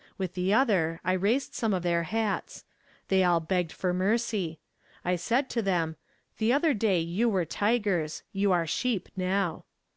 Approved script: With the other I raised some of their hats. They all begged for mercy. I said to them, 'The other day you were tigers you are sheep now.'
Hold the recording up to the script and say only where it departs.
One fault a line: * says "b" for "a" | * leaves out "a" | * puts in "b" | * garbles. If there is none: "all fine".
all fine